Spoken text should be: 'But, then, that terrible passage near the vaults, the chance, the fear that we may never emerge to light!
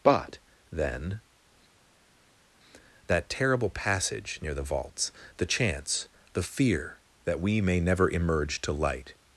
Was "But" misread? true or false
false